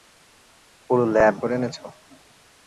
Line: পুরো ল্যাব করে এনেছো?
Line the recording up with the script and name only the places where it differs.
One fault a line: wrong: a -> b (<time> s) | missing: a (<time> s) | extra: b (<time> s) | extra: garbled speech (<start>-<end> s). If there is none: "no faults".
no faults